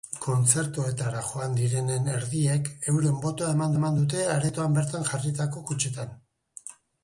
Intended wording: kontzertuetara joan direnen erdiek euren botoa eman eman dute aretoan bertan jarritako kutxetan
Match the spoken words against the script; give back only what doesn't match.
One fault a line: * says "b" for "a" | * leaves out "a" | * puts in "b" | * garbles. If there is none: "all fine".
all fine